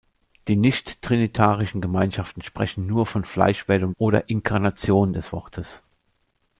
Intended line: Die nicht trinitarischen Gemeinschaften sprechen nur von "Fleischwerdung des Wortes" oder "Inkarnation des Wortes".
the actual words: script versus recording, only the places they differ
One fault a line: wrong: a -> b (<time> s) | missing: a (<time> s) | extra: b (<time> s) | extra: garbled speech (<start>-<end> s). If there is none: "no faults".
missing: des Wortes (3.9 s)